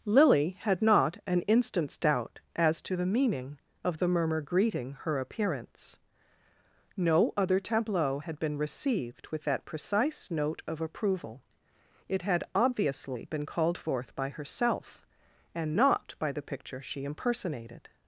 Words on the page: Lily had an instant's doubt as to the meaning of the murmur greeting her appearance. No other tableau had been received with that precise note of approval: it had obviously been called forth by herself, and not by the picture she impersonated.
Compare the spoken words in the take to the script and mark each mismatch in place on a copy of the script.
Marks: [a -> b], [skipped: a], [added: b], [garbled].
Lily had [added: not] an instant's doubt as to the meaning of the murmur greeting her appearance. No other tableau had been received with that precise note of approval: it had obviously been called forth by herself, and not by the picture she impersonated.